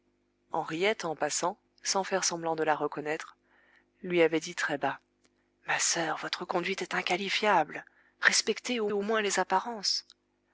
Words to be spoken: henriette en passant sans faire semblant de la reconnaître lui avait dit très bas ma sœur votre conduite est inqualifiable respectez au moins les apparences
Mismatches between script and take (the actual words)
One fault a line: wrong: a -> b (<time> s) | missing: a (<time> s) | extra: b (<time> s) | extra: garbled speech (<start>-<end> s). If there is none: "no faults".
extra: au (8.9 s)